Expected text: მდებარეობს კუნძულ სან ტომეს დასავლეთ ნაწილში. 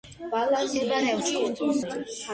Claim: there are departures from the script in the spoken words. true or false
true